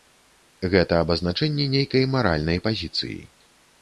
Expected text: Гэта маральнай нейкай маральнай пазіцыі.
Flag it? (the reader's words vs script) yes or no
yes